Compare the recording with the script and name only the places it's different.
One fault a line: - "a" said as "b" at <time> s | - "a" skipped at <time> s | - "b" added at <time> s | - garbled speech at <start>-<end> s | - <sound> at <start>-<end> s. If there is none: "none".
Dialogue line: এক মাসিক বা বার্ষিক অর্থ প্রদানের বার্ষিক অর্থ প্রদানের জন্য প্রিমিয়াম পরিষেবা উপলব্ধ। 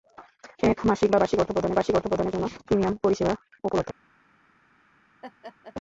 - laugh at 5.2-5.8 s